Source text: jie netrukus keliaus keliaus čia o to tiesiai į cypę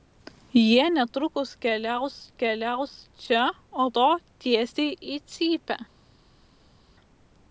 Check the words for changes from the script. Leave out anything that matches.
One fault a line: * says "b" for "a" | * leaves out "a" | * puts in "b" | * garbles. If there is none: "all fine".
all fine